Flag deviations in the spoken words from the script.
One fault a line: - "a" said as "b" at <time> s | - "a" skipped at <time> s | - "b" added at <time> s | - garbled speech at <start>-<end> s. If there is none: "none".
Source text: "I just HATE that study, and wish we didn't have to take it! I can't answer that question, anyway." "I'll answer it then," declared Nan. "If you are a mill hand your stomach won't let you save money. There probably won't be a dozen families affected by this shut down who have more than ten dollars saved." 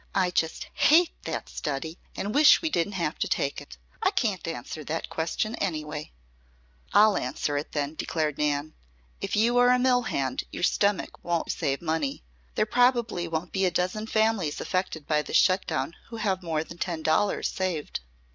- "let" skipped at 11.5 s